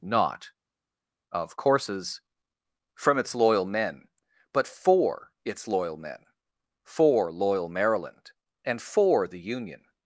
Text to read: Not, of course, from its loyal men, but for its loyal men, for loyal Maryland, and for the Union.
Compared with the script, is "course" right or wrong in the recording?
wrong